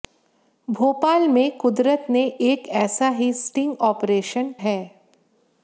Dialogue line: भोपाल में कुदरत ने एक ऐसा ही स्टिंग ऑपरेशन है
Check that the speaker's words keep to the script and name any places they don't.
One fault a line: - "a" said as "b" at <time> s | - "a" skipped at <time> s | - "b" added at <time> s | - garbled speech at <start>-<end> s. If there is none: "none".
none